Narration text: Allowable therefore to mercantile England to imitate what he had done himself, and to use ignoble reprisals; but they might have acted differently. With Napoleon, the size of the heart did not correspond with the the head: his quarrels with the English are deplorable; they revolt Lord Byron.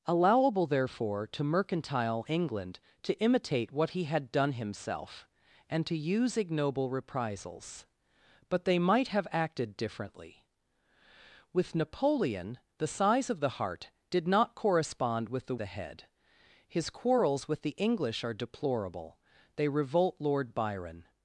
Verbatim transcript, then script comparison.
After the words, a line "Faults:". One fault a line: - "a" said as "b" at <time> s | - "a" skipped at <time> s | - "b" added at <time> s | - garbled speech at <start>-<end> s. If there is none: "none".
Allowable therefore to mercantile England to imitate what he had done himself, and to use ignoble reprisals; but they might have acted differently. With Napoleon, the size of the heart did not correspond with the the head: his quarrels with the English are deplorable; they revolt Lord Byron.
Faults:
none